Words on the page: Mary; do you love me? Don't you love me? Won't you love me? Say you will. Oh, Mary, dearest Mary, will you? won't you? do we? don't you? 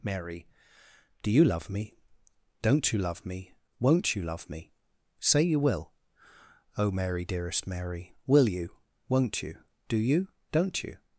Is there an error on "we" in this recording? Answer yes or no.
yes